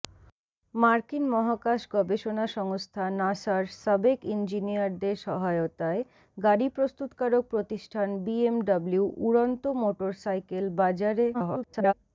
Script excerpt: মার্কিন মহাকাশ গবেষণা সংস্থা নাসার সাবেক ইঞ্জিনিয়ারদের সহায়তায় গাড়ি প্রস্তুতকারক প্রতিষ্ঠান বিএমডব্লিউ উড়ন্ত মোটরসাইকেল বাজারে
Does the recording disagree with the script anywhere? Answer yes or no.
yes